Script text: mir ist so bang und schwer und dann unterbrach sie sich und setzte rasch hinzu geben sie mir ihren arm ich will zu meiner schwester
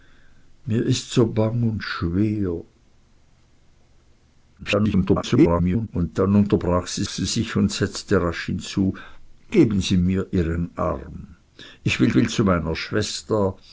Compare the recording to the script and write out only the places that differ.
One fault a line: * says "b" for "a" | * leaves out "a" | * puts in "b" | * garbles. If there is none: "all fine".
* garbles
* puts in "sie"
* puts in "will"